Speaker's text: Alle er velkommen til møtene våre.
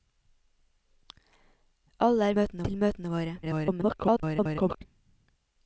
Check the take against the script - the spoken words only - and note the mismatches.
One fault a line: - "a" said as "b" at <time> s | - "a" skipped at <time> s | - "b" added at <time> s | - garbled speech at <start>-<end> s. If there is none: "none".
- "velkommen" said as "møtene" at 2.3 s
- garbled speech at 3.4-4.8 s